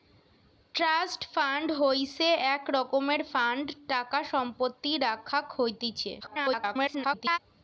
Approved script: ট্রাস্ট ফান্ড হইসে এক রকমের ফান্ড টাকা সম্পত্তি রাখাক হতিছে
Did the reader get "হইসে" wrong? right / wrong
right